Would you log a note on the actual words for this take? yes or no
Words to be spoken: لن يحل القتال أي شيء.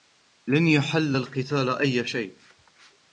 no